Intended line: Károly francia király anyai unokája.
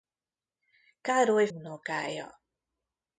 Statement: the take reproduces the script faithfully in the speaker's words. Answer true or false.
false